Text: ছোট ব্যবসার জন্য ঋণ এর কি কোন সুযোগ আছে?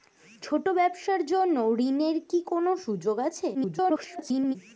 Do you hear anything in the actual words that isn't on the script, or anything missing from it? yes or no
yes